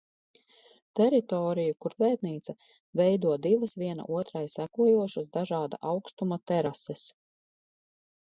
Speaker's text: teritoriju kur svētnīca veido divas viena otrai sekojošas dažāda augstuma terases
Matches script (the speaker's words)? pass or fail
pass